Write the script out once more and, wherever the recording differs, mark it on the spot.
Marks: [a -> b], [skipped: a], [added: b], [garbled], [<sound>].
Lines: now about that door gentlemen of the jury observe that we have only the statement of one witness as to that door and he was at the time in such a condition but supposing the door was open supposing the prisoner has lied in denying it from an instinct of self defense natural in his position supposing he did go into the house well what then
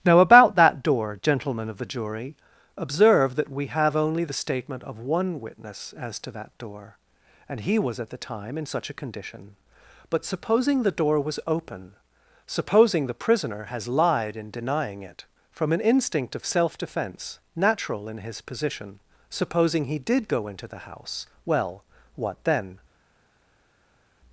now about that door gentlemen of the jury observe that we have only the statement of one witness as to that door and he was at the time in such a condition but supposing the door was open supposing the prisoner has lied in denying it from an instinct of self defense natural in his position supposing he did go into the house well what then